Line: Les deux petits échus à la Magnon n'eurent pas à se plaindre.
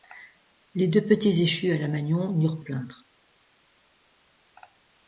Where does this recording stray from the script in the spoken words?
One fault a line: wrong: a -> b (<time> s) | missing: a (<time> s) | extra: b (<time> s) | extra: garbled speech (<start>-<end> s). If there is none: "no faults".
missing: pas à se (2.6 s)